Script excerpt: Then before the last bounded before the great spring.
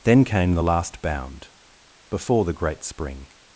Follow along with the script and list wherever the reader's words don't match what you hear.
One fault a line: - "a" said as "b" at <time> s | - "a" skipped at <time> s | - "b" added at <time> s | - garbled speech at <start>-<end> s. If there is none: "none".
- "before" said as "came" at 0.2 s
- "bounded" said as "bound" at 1.0 s